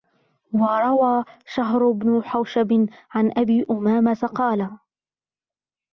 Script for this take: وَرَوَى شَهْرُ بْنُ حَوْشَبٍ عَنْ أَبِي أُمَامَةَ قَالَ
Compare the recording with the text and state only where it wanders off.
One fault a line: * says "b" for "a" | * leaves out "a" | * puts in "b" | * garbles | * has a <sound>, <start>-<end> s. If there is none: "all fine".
all fine